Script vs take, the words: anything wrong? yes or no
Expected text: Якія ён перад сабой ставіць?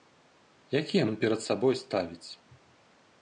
no